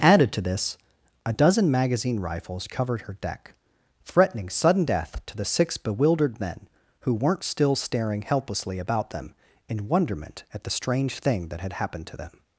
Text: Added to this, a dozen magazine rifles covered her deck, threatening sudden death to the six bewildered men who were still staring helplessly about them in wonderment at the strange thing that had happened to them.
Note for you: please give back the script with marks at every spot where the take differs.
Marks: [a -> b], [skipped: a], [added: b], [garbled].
Added to this, a dozen magazine rifles covered her deck, threatening sudden death to the six bewildered men who [were -> weren't] still staring helplessly about them in wonderment at the strange thing that had happened to them.